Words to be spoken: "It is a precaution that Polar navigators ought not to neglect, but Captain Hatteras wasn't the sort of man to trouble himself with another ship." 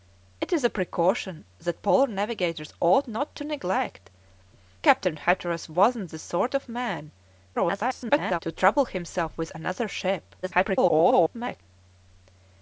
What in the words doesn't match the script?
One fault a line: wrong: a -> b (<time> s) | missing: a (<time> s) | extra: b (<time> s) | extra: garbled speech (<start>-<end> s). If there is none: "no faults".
missing: but (4.1 s)
extra: garbled speech (7.5-8.4 s)
extra: garbled speech (10.4-11.6 s)